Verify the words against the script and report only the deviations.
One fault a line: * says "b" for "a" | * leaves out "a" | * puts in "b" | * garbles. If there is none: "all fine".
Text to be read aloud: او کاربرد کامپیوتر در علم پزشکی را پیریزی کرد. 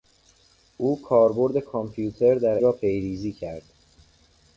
* leaves out "علم پزشکی"